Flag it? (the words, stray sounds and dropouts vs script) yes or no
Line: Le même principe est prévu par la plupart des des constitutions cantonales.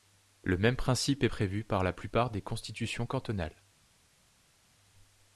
yes